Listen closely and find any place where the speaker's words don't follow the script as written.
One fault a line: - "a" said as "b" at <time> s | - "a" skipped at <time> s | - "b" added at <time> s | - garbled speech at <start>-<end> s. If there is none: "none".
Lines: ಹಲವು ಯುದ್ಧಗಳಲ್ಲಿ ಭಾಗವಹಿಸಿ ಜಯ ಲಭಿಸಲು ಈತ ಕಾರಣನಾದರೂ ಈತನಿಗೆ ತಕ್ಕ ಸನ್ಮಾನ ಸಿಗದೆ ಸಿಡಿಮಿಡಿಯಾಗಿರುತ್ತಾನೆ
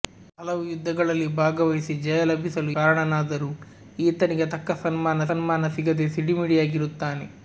- "ಈತ" skipped at 2.7 s
- "ಸನ್ಮಾನ" added at 5.3 s